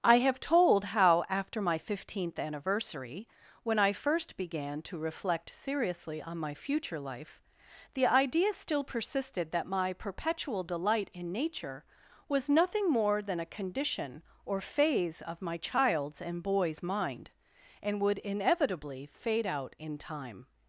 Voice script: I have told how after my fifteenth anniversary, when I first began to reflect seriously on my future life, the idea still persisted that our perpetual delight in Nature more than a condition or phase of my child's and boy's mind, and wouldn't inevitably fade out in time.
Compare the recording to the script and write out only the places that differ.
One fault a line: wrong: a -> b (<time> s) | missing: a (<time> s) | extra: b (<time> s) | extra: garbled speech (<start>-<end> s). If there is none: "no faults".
wrong: our -> my (9.8 s)
extra: was nothing (12.3 s)
wrong: wouldn't -> would (18.0 s)